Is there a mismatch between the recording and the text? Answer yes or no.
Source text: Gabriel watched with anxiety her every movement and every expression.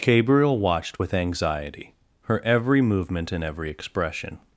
no